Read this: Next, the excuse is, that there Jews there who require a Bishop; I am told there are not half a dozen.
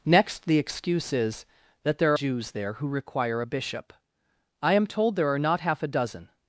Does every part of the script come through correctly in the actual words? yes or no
yes